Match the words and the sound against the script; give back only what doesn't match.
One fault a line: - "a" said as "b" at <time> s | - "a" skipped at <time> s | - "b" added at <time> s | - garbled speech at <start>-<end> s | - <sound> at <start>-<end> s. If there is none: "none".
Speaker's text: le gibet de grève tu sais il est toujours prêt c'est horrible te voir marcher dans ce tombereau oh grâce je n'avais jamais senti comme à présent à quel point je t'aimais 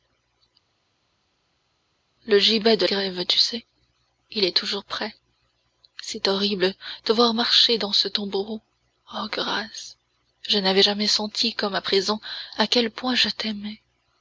none